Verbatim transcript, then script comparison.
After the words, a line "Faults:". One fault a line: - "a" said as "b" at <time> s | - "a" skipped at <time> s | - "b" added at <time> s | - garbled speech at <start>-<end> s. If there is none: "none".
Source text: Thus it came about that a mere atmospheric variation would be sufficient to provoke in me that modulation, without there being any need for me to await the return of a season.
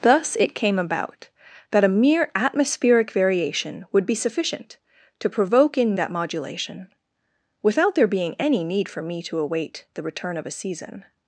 Thus it came about that a mere atmospheric variation would be sufficient to provoke in that modulation, without there being any need for me to await the return of a season.
Faults:
- "me" skipped at 6.0 s